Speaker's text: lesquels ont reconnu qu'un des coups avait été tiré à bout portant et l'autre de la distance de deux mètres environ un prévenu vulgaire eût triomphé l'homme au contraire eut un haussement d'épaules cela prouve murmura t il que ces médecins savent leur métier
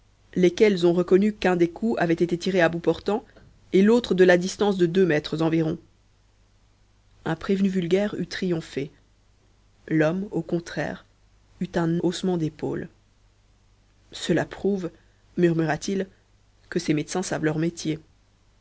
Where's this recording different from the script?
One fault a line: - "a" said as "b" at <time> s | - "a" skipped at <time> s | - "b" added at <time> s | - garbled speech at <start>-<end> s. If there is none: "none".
none